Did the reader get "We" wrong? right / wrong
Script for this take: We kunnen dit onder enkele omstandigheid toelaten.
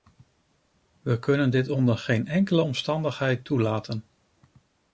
right